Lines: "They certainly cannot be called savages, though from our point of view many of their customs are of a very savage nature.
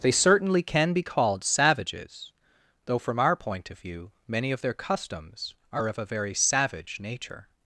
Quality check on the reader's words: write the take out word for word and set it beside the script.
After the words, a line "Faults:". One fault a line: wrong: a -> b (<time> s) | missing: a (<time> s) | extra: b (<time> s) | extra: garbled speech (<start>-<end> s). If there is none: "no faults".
"They certainly can be called savages, though from our point of view many of their customs are of a very savage nature.
Faults:
wrong: cannot -> can (0.6 s)